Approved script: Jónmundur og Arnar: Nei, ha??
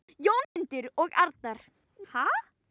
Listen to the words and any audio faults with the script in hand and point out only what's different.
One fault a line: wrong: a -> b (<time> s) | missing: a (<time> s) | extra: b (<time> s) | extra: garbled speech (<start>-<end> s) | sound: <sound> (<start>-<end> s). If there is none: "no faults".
sound: dropout (0.4-0.6 s)
missing: Nei (1.6 s)